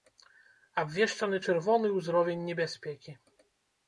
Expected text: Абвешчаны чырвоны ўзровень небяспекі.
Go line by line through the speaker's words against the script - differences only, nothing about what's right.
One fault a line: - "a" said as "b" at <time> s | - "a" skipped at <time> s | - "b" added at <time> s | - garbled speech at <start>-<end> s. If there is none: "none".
none